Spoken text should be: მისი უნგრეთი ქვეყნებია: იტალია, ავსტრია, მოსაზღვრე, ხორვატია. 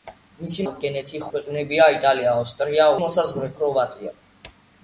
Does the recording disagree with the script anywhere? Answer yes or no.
no